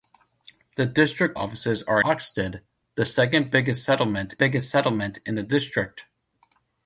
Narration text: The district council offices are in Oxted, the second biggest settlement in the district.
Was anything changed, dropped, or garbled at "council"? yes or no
yes